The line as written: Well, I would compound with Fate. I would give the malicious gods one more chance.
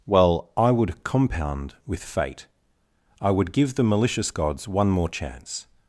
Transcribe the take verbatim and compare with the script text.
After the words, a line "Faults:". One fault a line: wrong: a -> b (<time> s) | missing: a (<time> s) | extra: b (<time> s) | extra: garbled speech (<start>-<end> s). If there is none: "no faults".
Well, I would compound with Fate. I would give the malicious gods one more chance.
Faults:
no faults